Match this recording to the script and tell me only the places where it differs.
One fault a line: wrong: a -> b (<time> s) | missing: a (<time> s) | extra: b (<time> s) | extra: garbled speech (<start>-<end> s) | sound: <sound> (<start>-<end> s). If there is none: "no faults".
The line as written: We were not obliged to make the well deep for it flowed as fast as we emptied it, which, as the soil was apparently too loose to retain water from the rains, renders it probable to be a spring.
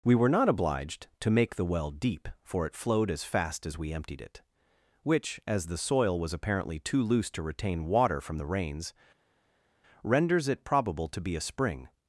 no faults